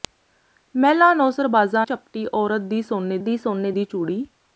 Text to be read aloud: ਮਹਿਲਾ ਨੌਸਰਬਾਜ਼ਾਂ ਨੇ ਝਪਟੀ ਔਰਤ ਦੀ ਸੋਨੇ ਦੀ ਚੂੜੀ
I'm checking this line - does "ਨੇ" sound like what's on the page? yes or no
no